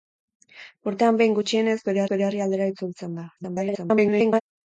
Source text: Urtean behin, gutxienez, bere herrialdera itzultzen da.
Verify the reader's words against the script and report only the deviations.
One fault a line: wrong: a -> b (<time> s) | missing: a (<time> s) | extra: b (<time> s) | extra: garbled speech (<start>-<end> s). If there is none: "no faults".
extra: bere (2.1 s)
extra: garbled speech (3.4-4.4 s)